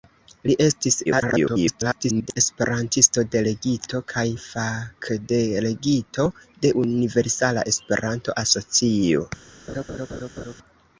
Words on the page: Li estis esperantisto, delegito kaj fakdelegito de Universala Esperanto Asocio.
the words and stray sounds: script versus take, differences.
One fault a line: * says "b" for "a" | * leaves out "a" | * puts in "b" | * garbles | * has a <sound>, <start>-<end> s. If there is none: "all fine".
* garbles
* has a laugh, 9.7-10.6 s